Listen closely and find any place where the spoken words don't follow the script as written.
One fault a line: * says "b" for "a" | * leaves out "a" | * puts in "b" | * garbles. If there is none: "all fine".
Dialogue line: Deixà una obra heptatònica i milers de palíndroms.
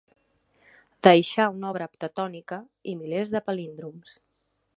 all fine